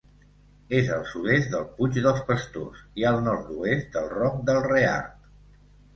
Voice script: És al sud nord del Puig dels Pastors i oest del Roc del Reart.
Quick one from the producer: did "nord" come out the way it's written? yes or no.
no